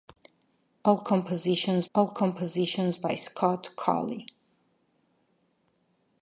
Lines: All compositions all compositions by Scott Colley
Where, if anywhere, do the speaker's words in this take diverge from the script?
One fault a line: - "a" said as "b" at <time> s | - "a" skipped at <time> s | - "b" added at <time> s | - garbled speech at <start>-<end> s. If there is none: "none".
none